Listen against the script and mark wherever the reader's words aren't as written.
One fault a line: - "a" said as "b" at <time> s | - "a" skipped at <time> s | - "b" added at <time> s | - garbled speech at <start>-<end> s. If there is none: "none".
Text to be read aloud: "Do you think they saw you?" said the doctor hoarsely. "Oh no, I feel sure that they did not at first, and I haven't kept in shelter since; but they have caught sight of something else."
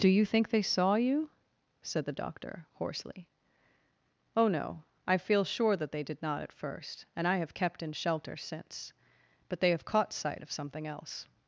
- "haven't" said as "have" at 7.4 s